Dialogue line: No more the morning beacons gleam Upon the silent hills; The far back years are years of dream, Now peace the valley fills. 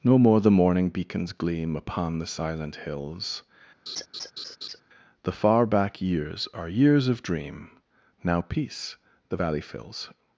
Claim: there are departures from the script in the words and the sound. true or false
true